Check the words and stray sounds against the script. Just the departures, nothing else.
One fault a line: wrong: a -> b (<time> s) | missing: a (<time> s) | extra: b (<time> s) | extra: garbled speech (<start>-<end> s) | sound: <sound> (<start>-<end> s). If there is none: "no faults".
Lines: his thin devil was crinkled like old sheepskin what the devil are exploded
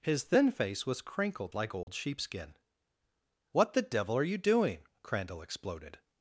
wrong: devil -> face (0.5 s)
sound: dropout (1.8-1.9 s)
extra: you doing crandall (4.2 s)